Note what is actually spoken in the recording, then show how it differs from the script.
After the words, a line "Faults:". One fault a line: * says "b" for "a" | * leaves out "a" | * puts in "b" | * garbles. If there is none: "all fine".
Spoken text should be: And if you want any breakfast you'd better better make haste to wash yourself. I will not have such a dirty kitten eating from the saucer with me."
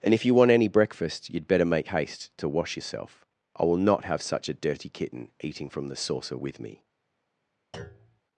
And if you want any breakfast you'd better make haste to wash yourself. I will not have such a dirty kitten eating from the saucer with me."
Faults:
* leaves out "better"